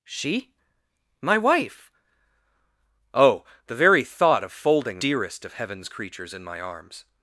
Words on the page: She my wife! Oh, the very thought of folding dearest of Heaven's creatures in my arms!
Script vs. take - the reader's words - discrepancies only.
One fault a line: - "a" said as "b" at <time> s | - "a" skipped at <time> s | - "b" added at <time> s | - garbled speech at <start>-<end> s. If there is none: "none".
none